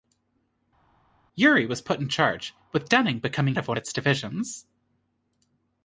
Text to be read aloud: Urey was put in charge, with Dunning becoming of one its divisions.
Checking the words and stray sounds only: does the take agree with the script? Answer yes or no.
yes